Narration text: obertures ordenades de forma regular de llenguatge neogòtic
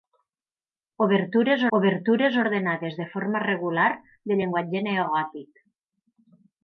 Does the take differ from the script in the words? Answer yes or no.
yes